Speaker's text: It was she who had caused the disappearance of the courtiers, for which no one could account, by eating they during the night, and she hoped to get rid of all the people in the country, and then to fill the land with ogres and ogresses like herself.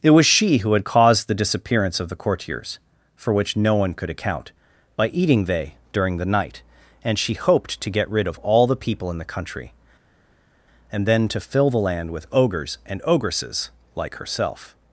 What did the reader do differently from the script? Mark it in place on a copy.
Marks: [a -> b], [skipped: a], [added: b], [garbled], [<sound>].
It was she who had caused the disappearance of the courtiers, for which no one could account, by eating they during the night, and she hoped to get rid of all the people in the country, and then to fill the land with ogres and ogresses like herself.